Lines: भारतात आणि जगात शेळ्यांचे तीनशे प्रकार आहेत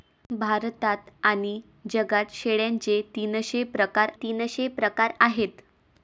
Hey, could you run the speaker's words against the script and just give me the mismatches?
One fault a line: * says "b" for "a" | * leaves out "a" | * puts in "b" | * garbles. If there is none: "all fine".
* puts in "तीनशे प्रकार"